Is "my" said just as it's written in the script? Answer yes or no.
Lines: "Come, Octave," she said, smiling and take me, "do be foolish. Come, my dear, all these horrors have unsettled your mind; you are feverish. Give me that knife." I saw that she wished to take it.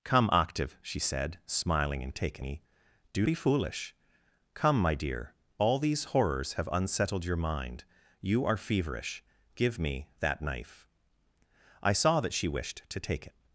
yes